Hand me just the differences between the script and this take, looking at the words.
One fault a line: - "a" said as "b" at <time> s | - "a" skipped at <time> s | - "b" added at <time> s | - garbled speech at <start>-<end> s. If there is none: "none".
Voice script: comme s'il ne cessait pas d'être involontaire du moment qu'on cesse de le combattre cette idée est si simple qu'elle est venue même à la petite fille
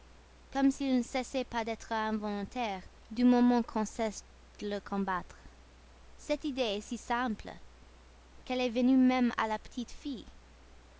none